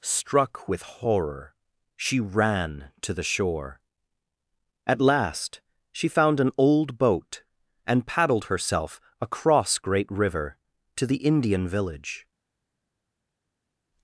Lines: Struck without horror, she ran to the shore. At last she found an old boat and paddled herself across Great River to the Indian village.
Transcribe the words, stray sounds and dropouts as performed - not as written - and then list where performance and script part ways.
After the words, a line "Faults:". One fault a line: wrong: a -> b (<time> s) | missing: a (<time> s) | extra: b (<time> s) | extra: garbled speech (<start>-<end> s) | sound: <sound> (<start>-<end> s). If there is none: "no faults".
Struck with horror, she ran to the shore. At last she found an old boat and paddled herself across Great River to the Indian village.
Faults:
wrong: without -> with (0.7 s)